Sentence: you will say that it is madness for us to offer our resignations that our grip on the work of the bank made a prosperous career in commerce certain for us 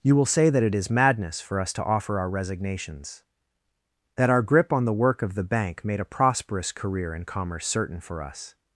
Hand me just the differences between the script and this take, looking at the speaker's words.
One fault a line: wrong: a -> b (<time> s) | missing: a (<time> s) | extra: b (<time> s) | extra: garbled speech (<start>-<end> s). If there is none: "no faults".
no faults